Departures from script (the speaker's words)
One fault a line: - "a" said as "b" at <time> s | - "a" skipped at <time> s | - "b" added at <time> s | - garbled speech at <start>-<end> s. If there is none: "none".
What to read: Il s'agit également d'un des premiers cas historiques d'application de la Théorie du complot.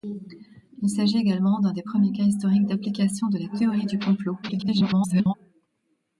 - garbled speech at 4.4-5.3 s